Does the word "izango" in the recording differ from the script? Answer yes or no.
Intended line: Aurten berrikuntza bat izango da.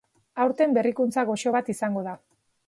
no